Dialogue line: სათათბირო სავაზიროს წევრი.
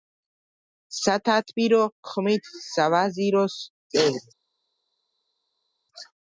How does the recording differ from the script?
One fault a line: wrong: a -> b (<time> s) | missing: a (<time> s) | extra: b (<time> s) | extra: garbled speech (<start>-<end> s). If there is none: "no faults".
extra: ხმით (2.1 s)